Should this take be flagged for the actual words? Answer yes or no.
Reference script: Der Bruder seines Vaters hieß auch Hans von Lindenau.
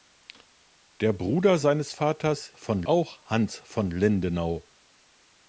yes